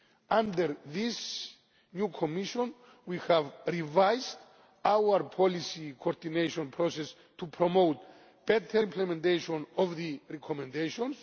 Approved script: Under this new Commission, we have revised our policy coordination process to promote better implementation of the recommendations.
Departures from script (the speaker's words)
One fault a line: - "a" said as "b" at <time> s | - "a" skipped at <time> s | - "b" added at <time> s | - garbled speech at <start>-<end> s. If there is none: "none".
none